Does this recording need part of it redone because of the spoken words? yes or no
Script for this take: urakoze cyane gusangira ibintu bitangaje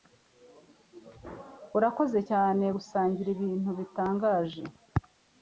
no